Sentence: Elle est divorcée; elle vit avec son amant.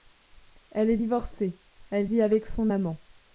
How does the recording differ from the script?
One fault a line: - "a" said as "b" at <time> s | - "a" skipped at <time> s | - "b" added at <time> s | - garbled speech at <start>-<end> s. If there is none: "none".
none